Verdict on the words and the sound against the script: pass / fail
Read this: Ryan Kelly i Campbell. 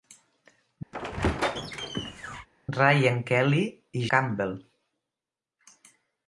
fail